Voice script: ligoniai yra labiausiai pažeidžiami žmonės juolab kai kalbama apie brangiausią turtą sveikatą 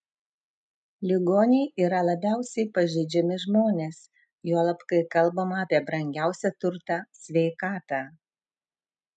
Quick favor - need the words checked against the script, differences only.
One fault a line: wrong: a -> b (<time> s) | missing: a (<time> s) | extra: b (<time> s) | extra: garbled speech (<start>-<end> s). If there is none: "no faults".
no faults